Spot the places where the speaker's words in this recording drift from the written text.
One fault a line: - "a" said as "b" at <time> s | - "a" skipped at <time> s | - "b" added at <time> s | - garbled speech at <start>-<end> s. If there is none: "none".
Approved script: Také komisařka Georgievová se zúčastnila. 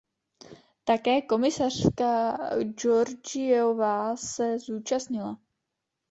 none